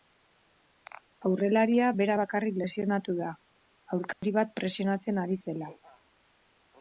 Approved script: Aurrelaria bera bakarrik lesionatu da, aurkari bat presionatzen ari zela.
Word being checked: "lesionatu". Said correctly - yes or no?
yes